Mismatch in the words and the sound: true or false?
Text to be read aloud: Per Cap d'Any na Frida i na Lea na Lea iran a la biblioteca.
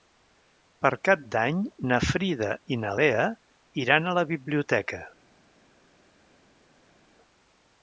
true